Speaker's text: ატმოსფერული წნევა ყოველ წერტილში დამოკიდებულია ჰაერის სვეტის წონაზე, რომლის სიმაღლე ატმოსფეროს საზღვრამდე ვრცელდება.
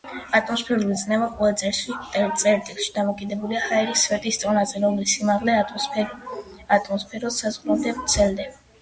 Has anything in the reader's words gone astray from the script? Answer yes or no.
no